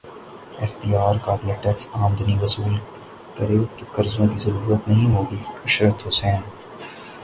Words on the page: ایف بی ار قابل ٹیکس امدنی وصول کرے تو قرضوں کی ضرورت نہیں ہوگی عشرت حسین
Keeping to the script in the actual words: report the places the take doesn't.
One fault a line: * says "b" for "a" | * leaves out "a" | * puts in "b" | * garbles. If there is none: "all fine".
all fine